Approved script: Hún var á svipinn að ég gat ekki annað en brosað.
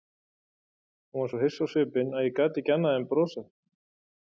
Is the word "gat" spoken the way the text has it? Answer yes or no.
yes